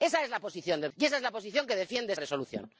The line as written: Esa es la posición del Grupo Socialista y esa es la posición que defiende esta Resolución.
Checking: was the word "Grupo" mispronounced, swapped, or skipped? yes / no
yes